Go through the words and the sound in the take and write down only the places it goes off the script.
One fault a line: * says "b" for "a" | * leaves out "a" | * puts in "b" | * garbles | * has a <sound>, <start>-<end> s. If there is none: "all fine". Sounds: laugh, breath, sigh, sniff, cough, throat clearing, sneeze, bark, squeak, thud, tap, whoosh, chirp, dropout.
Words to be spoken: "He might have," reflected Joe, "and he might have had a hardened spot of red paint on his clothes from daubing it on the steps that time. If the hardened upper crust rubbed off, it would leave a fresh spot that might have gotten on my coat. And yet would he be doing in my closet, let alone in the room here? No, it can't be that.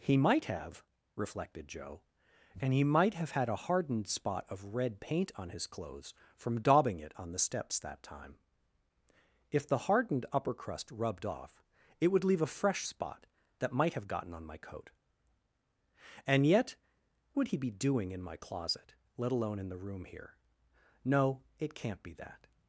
all fine